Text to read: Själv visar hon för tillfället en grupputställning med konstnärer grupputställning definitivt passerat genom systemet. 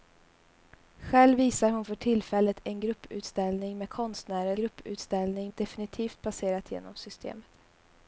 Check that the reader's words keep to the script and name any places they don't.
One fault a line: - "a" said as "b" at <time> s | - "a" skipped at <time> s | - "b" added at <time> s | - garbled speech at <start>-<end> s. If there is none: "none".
none